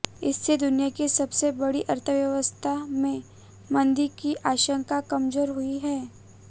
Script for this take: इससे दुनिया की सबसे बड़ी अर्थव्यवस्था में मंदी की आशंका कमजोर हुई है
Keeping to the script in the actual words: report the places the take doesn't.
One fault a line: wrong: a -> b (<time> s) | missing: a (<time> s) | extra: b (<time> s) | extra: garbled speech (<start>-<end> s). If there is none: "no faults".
no faults